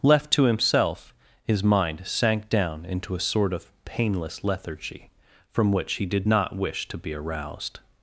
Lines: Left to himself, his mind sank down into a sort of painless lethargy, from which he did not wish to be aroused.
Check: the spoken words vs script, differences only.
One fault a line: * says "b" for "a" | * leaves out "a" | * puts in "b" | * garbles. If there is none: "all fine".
all fine